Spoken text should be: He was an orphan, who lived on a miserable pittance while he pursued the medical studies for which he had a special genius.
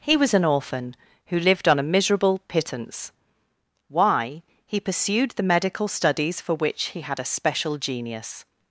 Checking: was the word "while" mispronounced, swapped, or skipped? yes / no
yes